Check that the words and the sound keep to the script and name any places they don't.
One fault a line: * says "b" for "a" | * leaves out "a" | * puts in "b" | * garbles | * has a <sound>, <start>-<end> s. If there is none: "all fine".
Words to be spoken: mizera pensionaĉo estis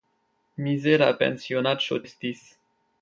all fine